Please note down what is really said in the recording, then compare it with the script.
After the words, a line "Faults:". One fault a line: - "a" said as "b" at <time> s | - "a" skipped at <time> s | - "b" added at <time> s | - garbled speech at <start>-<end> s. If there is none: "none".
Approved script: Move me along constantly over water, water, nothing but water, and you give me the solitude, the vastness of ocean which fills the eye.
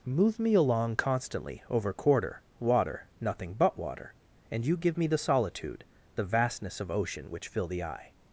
Move me along constantly over quarter, water, nothing but water, and you give me the solitude, the vastness of ocean which fill the eye.
Faults:
- "water" said as "quarter" at 1.9 s
- "fills" said as "fill" at 7.5 s